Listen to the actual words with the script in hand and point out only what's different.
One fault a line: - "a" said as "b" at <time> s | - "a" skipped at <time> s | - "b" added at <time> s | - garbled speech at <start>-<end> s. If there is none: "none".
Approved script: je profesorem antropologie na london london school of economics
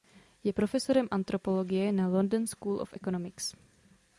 - "london" skipped at 2.5 s